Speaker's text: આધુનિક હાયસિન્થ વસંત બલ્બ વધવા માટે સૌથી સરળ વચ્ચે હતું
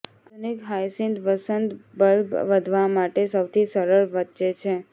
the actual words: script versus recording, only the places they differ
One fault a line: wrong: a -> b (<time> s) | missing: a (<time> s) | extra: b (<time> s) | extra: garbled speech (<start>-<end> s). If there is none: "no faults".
wrong: હતું -> છે (4.5 s)